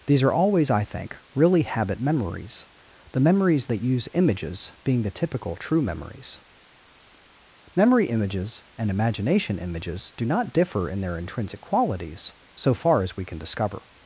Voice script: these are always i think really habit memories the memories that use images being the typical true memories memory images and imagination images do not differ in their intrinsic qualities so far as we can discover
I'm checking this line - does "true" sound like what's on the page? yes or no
yes